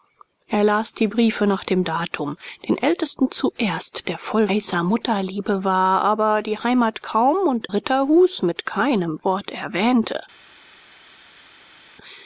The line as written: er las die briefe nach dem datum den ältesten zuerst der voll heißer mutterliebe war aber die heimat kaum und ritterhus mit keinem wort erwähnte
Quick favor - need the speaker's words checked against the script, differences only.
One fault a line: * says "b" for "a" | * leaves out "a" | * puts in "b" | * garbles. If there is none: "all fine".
all fine